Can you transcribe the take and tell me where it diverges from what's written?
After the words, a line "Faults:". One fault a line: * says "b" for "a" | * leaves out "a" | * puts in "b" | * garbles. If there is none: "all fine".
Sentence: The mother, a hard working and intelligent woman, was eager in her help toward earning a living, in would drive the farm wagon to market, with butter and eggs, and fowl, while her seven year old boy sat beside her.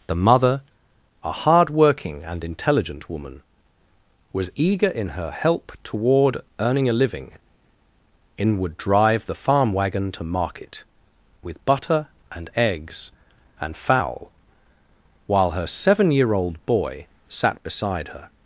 The mother, a hard working and intelligent woman, was eager in her help toward earning a living, in would drive the farm wagon to market, with butter and eggs, and fowl, while her seven year old boy sat beside her.
Faults:
all fine